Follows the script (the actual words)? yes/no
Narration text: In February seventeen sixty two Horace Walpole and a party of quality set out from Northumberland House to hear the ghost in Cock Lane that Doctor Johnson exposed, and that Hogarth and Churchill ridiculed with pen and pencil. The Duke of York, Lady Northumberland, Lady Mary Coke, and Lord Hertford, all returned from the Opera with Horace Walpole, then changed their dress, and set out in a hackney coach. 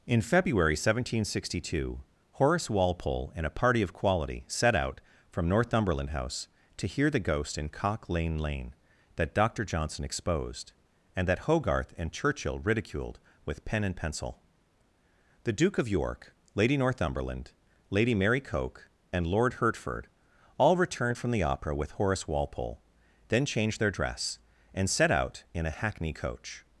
no